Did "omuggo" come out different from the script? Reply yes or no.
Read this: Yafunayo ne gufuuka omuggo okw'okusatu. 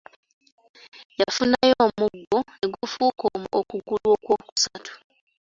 yes